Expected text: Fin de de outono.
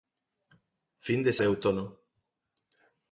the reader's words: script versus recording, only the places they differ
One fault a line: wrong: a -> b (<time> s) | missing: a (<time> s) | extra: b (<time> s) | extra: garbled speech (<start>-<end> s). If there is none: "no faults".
no faults